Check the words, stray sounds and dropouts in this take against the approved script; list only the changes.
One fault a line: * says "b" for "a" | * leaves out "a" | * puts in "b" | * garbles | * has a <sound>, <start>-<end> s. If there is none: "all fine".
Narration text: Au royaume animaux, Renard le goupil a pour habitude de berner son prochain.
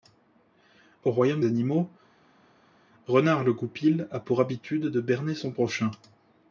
all fine